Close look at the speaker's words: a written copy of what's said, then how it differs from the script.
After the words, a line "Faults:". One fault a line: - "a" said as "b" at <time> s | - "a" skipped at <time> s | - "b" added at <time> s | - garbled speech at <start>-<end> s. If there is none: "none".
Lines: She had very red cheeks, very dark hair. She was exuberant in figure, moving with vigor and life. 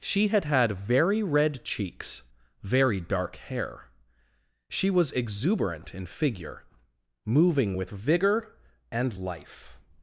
She had had very red cheeks, very dark hair. She was exuberant in figure, moving with vigor and life.
Faults:
- "had" added at 0.5 s